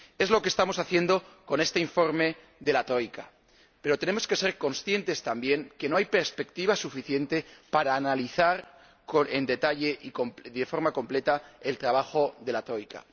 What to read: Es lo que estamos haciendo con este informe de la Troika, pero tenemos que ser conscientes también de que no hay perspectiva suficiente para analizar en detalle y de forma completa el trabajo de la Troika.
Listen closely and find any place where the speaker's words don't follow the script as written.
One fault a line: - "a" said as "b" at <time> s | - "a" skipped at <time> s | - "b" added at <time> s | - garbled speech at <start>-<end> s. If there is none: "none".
none